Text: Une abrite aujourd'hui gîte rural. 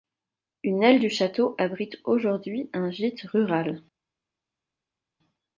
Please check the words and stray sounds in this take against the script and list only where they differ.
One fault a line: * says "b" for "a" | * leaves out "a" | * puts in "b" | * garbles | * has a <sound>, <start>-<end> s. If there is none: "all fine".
* puts in "aile du château"
* puts in "un"